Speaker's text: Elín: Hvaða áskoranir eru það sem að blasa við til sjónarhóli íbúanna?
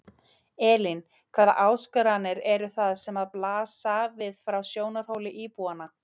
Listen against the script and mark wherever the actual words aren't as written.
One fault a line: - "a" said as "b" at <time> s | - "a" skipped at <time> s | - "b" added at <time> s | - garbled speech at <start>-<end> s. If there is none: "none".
- "til" said as "frá" at 4.5 s